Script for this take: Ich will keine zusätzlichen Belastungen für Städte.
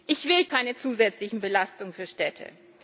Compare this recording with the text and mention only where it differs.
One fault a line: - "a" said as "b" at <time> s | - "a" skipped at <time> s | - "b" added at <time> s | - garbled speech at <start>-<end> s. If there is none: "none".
none